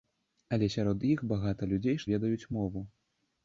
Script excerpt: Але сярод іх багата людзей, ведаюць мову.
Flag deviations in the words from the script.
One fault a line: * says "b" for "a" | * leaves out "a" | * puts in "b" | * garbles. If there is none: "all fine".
all fine